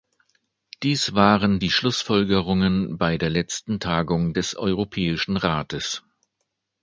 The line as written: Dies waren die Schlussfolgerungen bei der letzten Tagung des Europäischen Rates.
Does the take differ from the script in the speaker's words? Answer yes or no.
no